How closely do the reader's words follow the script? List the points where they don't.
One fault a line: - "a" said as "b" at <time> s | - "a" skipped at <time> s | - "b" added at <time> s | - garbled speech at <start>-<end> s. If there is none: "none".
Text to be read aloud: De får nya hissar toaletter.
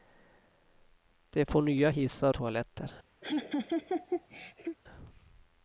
none